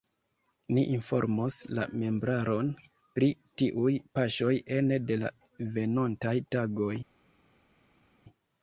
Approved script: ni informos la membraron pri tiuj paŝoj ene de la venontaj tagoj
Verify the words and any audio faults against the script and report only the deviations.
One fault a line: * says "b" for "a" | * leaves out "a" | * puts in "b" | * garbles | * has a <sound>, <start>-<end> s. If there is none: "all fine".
all fine